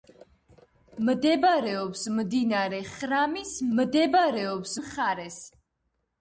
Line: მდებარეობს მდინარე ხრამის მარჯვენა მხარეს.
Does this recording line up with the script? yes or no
no